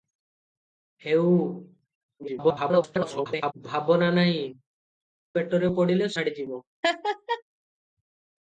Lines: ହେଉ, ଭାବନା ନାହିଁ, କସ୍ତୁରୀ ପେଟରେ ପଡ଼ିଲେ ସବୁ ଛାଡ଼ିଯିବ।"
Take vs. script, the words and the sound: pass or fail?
fail